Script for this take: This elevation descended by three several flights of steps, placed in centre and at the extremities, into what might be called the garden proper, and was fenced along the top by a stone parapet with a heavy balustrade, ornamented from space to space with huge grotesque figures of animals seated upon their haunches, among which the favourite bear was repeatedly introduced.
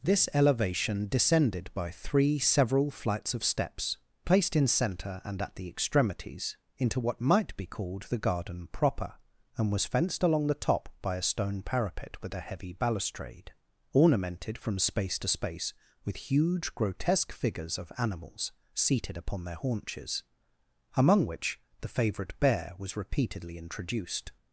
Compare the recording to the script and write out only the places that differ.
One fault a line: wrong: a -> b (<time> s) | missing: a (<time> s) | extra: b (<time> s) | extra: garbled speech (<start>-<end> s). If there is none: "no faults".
no faults